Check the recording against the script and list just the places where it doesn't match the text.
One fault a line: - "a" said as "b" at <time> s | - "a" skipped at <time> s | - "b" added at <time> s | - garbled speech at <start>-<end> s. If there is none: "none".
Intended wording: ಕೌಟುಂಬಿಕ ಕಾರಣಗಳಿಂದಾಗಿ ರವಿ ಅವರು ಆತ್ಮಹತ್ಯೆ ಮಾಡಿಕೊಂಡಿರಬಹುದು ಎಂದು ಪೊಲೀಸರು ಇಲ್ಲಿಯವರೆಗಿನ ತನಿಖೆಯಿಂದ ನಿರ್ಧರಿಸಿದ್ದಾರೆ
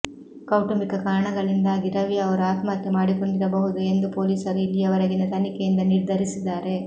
none